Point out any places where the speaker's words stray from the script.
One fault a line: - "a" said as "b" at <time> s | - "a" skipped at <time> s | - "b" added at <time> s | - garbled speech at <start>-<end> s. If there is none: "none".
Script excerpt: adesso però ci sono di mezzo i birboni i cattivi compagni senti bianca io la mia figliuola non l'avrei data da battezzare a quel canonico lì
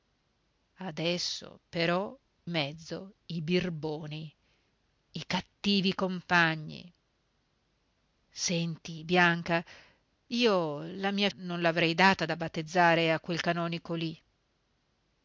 - "ci sono di" skipped at 2.2 s
- "figliuola" skipped at 11.3 s